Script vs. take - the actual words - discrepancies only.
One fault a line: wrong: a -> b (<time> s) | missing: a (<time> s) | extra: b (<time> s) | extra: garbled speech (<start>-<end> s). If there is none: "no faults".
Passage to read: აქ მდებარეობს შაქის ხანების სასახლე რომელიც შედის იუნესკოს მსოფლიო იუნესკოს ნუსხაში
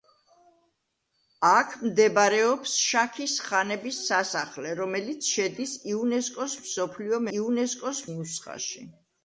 no faults